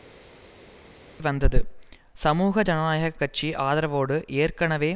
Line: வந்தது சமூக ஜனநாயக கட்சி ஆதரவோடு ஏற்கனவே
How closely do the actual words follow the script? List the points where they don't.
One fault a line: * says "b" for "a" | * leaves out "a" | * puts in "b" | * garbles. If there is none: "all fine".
all fine